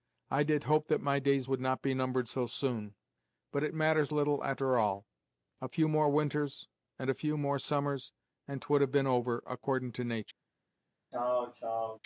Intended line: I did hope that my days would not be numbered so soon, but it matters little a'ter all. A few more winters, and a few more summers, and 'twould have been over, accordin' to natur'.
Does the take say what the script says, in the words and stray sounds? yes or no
no